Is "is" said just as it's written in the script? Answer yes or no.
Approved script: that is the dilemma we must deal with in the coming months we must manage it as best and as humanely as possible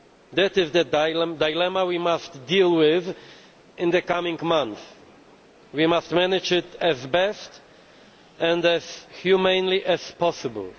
yes